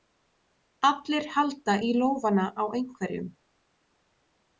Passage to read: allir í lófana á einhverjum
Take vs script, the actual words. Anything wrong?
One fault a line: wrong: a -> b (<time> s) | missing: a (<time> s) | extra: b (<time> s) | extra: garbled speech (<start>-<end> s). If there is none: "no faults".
extra: halda (1.4 s)